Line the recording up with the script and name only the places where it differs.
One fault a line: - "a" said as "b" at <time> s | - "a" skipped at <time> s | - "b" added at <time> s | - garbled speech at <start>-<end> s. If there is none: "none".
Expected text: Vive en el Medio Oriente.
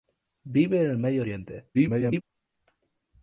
- garbled speech at 1.7-2.2 s